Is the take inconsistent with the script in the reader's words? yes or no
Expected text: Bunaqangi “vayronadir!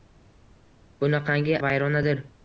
no